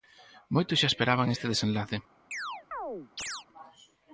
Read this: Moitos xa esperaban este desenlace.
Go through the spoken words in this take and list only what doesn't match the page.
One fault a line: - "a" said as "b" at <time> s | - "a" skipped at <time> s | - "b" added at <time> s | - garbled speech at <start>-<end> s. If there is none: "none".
none